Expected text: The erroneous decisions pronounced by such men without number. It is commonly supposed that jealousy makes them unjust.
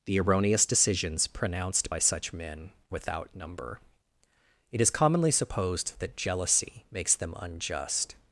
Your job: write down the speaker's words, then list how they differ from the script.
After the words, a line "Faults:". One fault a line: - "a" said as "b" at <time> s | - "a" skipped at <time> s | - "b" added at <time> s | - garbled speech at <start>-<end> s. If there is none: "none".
The erroneous decisions pronounced by such men without number. It is commonly supposed that jealousy makes them unjust.
Faults:
none